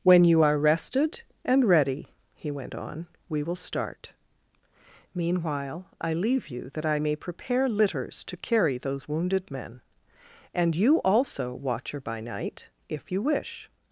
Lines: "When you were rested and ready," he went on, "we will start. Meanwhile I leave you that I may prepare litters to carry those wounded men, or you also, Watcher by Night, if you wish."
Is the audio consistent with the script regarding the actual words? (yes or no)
no